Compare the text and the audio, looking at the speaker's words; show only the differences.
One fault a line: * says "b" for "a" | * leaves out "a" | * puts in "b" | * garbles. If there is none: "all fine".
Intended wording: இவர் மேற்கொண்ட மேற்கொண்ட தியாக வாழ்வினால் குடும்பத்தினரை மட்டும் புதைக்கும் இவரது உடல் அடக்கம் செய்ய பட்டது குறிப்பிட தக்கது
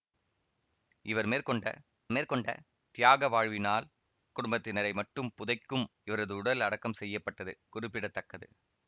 all fine